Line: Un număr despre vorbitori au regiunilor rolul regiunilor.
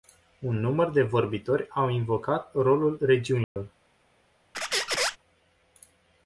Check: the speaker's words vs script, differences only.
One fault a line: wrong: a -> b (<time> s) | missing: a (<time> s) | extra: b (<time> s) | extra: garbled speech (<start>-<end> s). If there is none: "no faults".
wrong: despre -> de (0.9 s)
wrong: regiunilor -> invocat (1.9 s)